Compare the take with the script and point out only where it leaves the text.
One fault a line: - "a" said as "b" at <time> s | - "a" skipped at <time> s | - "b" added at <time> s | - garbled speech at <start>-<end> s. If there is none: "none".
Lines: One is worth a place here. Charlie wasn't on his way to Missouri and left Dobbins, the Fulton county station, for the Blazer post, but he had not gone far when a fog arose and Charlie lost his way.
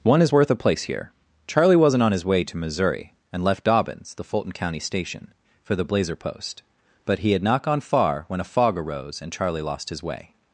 none